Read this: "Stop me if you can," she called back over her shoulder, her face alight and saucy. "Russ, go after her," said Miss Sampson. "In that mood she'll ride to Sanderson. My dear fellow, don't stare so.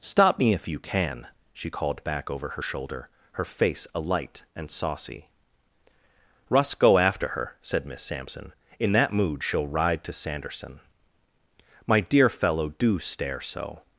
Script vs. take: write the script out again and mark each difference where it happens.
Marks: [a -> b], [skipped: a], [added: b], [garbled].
"Stop me if you can," she called back over her shoulder, her face alight and saucy. "Russ, go after her," said Miss Sampson. "In that mood she'll ride to Sanderson. My dear fellow, [don't -> do] stare so.